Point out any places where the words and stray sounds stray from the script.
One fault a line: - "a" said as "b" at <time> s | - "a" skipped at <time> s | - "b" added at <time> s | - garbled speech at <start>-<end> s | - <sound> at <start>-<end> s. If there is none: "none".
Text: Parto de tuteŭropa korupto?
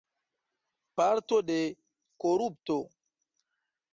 - "tuteŭropa" skipped at 1.6 s